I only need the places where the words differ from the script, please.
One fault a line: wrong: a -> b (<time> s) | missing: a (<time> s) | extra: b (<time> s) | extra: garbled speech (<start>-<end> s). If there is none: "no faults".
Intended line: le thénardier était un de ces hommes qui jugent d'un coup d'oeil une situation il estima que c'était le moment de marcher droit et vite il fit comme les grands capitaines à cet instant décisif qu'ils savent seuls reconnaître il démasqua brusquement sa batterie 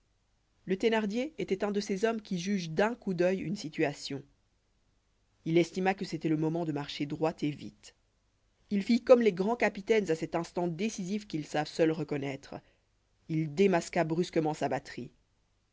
no faults